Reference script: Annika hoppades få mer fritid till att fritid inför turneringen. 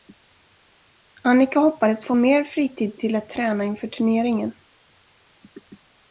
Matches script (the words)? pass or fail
fail